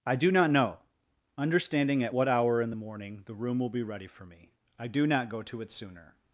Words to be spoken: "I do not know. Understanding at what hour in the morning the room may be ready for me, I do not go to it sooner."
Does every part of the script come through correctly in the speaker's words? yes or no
no